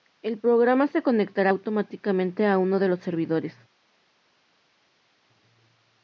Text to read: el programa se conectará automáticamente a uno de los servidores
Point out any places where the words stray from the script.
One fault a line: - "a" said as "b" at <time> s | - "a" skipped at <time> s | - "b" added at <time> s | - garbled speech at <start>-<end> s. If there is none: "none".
none